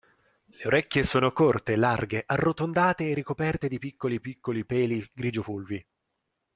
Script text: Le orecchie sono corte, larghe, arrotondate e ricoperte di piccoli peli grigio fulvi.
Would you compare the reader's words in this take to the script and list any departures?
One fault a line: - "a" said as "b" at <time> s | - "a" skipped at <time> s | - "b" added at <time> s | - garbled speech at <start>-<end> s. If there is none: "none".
- "piccoli" added at 4.2 s